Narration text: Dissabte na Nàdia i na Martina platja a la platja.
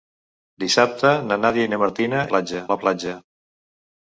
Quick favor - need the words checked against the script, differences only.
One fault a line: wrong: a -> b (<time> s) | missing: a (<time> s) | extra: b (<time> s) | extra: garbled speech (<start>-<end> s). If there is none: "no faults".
no faults